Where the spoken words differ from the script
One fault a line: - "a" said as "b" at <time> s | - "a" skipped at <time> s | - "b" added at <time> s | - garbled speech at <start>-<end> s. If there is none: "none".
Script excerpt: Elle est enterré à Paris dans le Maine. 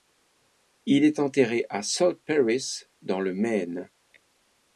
- "Elle" said as "Il" at 0.9 s
- "South" added at 1.8 s